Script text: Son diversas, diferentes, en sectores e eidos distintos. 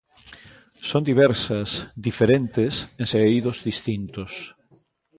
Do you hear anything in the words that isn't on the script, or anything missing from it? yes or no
yes